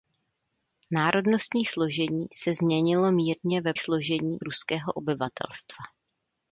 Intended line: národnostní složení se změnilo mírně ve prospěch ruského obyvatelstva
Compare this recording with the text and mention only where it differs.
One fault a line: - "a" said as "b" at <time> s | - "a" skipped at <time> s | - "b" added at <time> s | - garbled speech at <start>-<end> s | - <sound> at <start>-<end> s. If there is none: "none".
- "prospěch" said as "složení" at 3.8 s